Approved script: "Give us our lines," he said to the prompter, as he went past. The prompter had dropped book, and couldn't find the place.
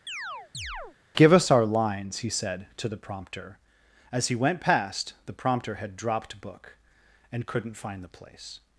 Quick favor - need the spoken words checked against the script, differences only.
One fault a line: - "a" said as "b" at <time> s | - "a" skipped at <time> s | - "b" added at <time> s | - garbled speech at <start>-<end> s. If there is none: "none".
none